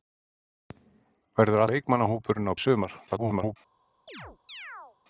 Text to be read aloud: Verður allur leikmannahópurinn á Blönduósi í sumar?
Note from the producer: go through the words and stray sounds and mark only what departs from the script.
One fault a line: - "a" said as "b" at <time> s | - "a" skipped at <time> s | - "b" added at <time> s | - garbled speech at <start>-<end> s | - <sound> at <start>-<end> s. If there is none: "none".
- "allur" skipped at 1.6 s
- "Blönduósi" skipped at 2.5 s
- garbled speech at 3.1-3.6 s
- chirp at 4.1-5.0 s